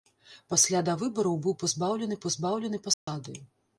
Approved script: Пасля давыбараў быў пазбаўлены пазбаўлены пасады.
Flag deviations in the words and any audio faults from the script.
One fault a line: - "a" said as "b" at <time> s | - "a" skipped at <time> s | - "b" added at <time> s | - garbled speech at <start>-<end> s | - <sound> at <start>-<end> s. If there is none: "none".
- dropout at 2.9-3.1 s